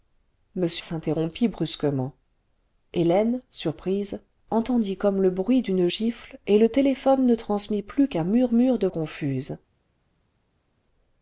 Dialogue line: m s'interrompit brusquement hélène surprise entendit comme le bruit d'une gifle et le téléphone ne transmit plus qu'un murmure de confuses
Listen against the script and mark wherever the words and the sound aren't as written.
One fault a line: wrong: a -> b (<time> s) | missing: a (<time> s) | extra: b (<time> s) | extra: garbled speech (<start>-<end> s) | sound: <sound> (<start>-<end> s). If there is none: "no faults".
no faults